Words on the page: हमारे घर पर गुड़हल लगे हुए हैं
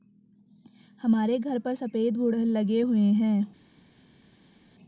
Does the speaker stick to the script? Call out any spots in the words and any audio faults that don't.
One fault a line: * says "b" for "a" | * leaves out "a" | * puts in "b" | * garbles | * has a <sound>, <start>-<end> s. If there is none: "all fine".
* puts in "सफेद"